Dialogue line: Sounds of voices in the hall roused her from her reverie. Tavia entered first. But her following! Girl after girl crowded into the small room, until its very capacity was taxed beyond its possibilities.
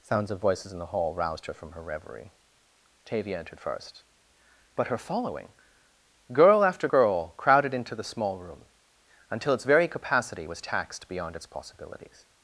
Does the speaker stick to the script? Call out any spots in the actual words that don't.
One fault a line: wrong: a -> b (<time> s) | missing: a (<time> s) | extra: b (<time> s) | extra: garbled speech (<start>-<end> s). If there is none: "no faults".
no faults